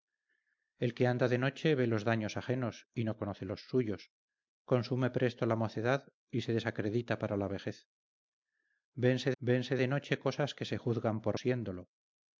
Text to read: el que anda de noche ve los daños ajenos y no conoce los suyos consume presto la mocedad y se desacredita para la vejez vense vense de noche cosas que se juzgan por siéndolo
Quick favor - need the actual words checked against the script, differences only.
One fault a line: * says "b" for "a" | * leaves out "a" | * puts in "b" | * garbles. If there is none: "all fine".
all fine